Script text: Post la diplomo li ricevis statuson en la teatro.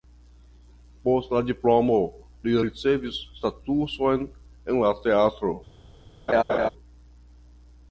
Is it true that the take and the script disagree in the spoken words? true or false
false